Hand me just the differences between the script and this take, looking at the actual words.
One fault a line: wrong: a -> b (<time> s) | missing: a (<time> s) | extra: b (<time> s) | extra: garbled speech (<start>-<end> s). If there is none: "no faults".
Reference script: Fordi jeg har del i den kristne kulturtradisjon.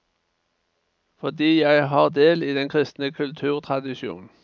no faults